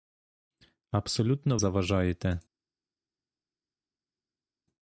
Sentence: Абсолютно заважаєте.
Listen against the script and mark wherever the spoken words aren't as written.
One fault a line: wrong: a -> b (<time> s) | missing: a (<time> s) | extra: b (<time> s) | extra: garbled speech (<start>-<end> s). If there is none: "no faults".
no faults